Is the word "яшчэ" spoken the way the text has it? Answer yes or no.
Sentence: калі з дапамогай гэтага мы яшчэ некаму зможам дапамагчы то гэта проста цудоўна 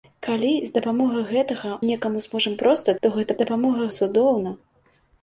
no